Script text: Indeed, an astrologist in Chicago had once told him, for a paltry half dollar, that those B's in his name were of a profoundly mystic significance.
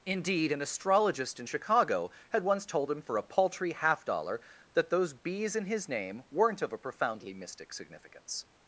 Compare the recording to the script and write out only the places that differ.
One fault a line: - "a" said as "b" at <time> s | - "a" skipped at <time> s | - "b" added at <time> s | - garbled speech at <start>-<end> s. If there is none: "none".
- "were" said as "weren't" at 6.3 s